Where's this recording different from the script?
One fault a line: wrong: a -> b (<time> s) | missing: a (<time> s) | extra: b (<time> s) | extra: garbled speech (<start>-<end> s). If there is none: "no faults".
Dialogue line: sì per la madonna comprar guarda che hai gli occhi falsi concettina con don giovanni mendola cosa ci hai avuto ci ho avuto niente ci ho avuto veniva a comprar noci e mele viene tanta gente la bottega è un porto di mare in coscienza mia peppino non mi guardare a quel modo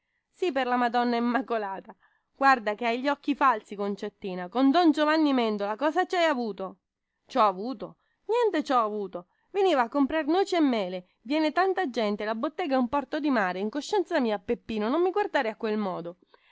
wrong: comprar -> immacolata (1.1 s)